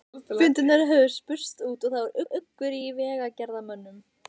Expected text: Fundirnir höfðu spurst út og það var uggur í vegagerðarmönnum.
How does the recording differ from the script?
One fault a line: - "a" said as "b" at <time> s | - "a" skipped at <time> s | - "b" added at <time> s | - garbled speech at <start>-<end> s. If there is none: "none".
- "var" added at 2.2 s